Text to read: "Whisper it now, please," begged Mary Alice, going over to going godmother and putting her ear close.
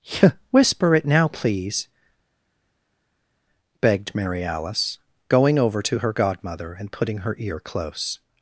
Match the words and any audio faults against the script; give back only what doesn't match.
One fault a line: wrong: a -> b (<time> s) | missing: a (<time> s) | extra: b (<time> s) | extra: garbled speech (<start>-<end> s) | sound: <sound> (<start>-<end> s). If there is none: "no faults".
wrong: going -> her (6.0 s)